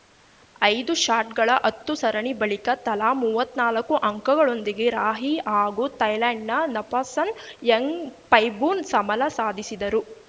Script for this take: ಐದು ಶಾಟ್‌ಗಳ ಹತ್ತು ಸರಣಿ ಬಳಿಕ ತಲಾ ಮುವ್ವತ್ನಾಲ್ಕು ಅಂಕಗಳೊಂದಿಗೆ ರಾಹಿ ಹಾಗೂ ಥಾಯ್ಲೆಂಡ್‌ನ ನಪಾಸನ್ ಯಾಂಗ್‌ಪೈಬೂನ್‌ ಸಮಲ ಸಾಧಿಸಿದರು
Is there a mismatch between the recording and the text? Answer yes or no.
no